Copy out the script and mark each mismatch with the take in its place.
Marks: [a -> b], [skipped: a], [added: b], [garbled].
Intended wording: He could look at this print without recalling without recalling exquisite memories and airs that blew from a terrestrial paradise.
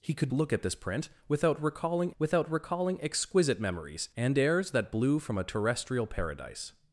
He could look at this print without recalling without recalling exquisite memories and airs that blew from a terrestrial paradise.